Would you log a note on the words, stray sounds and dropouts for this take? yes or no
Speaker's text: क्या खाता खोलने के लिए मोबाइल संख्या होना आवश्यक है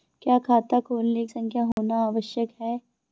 yes